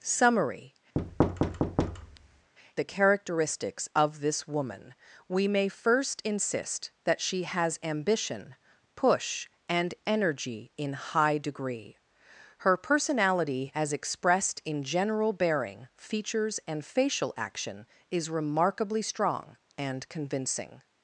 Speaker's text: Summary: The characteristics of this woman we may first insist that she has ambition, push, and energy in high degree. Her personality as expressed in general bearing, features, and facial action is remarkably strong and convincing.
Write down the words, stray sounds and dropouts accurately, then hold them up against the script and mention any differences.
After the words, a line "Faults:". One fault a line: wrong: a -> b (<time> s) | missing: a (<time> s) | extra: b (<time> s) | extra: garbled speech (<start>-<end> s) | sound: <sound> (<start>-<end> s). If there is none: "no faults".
Summary: The characteristics of this woman we may first insist that she has ambition, push, and energy in high degree. Her personality as expressed in general bearing, features, and facial action is remarkably strong and convincing.
Faults:
sound: thud (1.0-2.5 s)